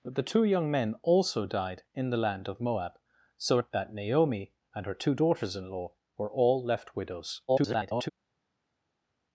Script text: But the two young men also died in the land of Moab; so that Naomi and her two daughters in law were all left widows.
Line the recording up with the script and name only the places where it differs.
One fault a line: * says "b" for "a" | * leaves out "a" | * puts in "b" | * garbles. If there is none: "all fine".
* garbles